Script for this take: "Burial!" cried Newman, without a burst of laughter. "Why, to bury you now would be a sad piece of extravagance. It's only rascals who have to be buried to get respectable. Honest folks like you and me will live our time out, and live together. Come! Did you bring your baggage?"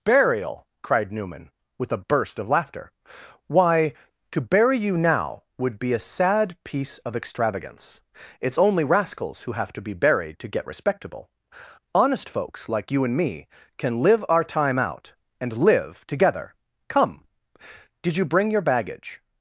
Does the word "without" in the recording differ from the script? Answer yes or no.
yes